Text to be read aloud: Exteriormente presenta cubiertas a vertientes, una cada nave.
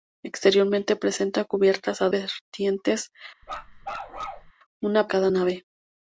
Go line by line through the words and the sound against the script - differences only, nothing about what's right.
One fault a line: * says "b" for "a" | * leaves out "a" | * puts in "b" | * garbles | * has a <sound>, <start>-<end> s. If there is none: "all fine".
* has a bark, 3.4-4.5 s